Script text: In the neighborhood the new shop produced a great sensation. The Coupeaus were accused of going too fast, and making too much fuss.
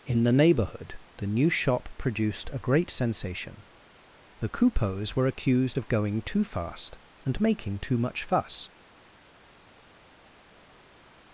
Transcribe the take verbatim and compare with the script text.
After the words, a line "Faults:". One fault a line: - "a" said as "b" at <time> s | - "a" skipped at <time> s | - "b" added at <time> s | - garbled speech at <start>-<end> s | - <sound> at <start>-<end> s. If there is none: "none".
In the neighborhood the new shop produced a great sensation. The Coupeaus were accused of going too fast, and making too much fuss.
Faults:
none